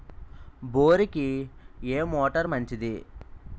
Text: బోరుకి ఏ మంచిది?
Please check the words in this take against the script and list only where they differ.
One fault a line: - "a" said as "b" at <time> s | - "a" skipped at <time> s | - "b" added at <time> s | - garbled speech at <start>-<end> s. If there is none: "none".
- "మోటారు" added at 2.1 s